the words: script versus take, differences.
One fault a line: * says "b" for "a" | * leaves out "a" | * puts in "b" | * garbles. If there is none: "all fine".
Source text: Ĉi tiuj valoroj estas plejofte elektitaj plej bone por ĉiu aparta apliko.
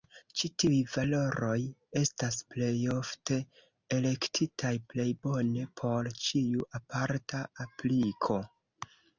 all fine